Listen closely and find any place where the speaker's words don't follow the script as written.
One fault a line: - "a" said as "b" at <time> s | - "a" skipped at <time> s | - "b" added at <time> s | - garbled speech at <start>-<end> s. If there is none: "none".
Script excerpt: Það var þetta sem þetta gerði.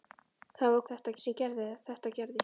none